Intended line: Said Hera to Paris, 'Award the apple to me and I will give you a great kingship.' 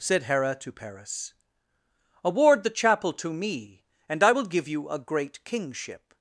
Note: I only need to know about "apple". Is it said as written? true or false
false